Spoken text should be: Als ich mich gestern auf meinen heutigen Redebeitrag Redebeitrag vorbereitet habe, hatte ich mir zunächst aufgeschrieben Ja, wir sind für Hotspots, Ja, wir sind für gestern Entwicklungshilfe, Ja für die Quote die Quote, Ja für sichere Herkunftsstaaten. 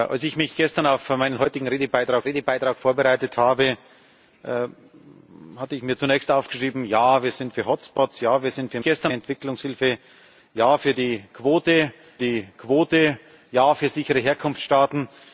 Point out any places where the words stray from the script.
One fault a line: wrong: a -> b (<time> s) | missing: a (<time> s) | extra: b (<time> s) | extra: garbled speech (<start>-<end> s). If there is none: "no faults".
no faults